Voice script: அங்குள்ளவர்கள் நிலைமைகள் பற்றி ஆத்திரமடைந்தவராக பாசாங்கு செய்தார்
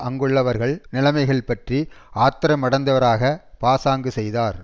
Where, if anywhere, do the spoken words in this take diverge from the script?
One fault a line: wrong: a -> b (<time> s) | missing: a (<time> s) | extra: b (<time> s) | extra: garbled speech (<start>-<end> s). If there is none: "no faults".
no faults